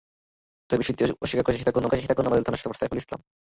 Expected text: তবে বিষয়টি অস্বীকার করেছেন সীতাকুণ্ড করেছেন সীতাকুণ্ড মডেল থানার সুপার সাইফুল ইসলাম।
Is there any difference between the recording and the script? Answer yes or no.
no